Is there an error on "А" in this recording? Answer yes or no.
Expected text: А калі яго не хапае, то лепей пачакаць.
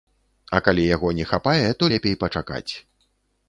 no